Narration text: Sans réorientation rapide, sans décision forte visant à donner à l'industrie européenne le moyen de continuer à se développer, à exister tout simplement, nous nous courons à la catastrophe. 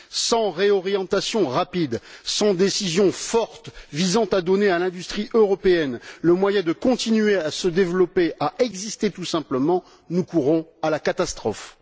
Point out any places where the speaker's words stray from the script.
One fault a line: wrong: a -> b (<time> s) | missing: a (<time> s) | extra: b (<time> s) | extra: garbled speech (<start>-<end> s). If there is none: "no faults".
missing: nous (10.2 s)